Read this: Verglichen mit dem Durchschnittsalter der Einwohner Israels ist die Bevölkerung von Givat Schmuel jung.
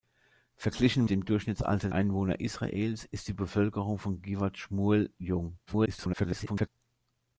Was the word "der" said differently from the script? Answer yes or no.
yes